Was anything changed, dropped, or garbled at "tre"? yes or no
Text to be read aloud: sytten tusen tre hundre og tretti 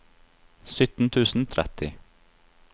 yes